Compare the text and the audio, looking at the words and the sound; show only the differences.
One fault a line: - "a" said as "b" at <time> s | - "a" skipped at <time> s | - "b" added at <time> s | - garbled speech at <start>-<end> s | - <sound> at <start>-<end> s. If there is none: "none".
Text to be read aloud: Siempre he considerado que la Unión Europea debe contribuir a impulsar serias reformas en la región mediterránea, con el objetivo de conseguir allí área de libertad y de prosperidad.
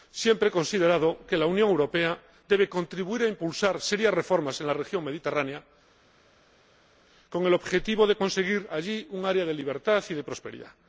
- "un" added at 9.1 s